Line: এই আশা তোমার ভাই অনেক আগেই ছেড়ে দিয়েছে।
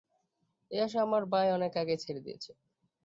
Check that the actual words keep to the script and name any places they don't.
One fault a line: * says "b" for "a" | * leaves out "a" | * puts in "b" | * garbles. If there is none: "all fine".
* says "আমার" for "তোমার"